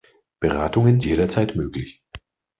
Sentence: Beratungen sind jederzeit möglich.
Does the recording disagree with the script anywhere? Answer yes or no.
yes